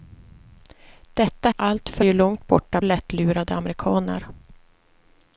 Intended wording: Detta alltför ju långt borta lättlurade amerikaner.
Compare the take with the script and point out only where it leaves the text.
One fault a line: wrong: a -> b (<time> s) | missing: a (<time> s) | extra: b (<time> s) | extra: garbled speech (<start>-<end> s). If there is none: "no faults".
no faults